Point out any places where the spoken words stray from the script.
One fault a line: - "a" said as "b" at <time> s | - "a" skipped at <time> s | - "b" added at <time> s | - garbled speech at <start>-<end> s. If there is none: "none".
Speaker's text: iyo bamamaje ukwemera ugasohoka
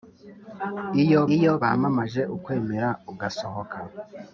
- "iyo" added at 1.4 s